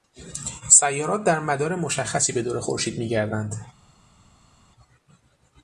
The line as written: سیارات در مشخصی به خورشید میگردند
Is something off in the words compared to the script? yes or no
yes